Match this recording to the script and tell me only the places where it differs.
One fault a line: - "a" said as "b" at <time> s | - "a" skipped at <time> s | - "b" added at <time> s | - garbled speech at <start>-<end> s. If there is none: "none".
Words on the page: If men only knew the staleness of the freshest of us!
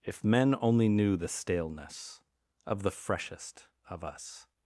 none